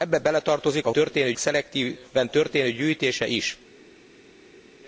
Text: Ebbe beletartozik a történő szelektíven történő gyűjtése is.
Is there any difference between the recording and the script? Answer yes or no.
no